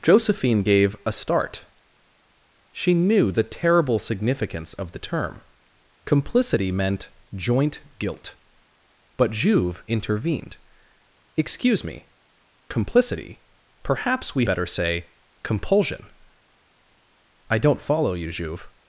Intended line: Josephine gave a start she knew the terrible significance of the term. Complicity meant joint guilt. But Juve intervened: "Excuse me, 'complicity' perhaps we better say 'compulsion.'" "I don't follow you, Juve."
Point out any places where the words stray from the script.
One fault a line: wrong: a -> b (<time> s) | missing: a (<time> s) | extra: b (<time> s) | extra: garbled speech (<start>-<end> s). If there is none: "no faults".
no faults